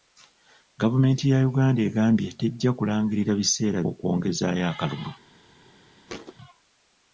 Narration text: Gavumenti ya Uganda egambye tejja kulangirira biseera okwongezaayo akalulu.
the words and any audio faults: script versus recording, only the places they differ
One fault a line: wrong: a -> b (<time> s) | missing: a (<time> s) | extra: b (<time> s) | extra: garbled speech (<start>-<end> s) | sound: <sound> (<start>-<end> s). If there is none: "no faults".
sound: thud (6.1-6.3 s)